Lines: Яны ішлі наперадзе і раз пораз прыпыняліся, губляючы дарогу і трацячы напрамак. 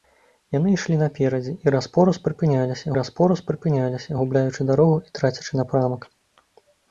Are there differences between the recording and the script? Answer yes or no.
yes